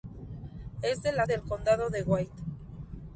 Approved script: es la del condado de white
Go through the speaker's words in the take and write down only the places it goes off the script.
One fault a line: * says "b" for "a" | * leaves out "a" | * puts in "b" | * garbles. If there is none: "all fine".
all fine